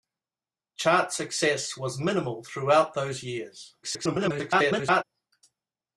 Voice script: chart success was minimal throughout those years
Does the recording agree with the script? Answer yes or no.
no